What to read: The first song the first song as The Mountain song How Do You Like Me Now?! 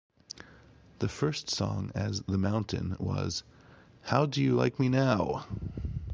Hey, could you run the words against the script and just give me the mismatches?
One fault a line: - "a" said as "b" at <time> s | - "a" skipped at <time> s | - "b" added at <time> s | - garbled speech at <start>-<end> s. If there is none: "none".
- "the first song" skipped at 1.9 s
- "song" said as "was" at 3.0 s